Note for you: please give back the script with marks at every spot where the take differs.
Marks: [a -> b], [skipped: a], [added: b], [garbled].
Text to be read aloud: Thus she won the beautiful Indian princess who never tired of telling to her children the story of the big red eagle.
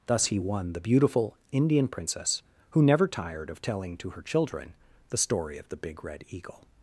Thus [she -> he] won the beautiful Indian princess who never tired of telling to her children the story of the big red eagle.